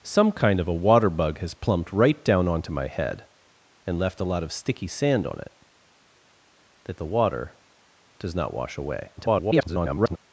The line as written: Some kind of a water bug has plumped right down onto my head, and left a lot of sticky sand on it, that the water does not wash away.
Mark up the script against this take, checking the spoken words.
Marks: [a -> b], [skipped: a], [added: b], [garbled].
Some kind of a water bug has plumped right down onto my head, and left a lot of sticky sand on it, that the water does not wash away. [garbled]